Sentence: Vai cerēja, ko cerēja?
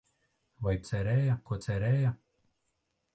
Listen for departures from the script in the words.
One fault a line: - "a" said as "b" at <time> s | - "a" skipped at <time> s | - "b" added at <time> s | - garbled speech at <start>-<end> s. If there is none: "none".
none